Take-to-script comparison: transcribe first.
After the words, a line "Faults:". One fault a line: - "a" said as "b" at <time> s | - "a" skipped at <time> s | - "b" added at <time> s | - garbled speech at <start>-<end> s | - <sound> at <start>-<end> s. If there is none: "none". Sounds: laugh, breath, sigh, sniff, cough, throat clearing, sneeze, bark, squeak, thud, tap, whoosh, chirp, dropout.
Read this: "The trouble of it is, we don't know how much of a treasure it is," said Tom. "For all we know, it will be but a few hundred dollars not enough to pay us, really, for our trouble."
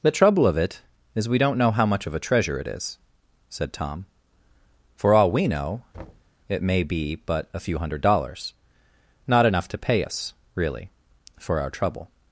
"The trouble of it is, we don't know how much of a treasure it is," said Tom. "For all we know, it may be but a few hundred dollars not enough to pay us, really, for our trouble."
Faults:
- thud at 5.9-6.3 s
- "will" said as "may" at 6.6 s